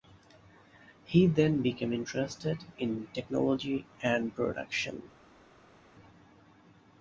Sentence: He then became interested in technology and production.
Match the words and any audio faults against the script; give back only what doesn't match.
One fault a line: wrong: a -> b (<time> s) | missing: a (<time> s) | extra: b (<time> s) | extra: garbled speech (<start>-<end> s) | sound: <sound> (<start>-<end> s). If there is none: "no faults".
no faults